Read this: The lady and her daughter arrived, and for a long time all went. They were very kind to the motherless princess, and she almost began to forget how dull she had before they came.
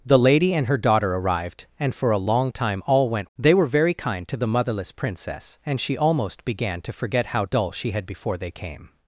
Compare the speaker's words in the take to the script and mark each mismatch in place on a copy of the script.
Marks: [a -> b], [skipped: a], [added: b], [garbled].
The lady and her daughter arrived, and for a long time all went. They were very kind to the motherless princess, and she almost began to forget how dull she had before they came.